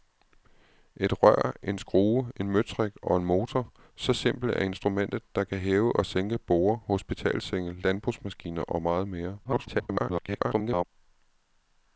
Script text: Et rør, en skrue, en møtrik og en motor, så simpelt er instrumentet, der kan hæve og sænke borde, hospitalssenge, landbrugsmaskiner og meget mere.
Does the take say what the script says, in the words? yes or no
no